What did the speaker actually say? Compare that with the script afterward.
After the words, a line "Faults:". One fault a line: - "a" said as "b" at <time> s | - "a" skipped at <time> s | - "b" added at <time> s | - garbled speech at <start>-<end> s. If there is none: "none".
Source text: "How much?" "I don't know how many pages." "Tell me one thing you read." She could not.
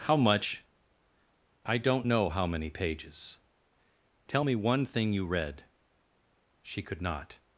"How much?" "I don't know how many pages." "Tell me one thing you read." She could not.
Faults:
none